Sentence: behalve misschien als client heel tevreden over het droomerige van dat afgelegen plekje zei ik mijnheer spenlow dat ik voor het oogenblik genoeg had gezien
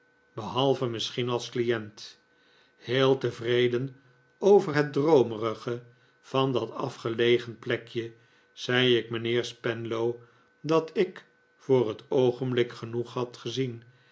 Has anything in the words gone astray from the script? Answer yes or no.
no